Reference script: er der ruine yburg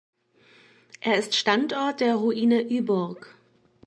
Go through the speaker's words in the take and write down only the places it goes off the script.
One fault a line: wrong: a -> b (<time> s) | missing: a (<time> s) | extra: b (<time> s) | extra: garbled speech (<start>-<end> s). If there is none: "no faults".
extra: ist standort (1.2 s)